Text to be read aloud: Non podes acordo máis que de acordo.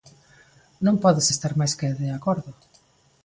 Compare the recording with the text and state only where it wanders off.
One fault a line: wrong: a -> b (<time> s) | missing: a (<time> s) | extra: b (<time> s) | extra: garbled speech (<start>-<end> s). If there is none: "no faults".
wrong: acordo -> estar (1.3 s)